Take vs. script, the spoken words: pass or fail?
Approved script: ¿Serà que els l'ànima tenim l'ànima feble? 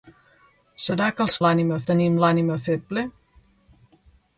pass